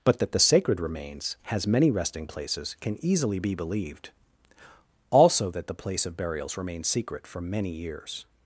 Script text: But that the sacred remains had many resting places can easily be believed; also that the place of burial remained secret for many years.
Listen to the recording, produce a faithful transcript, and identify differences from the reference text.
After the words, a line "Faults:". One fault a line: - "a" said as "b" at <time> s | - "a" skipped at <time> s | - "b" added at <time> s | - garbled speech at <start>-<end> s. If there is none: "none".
But that the sacred remains has many resting places can easily be believed; also that the place of burials remained secret for many years.
Faults:
- "had" said as "has" at 1.4 s
- "burial" said as "burials" at 6.2 s